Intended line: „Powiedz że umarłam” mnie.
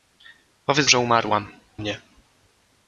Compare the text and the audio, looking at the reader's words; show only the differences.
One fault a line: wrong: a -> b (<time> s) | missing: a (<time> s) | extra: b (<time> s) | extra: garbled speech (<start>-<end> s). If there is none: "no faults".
no faults